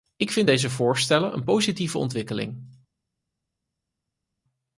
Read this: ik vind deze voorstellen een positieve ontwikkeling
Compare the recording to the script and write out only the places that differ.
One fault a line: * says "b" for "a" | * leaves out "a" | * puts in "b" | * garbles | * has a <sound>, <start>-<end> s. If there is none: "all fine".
all fine